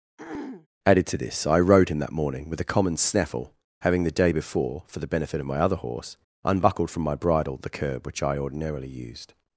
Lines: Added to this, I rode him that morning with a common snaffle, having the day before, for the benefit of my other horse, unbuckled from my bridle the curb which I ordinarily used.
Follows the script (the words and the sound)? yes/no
no